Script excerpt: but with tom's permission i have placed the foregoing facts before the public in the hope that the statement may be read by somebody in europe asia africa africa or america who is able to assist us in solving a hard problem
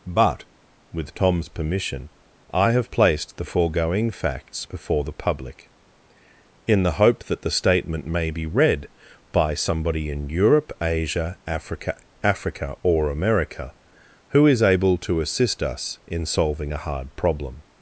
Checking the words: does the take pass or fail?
pass